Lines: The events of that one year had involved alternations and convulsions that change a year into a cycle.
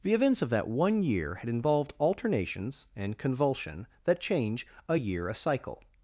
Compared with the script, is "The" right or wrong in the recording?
right